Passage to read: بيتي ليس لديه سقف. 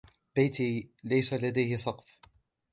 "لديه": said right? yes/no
yes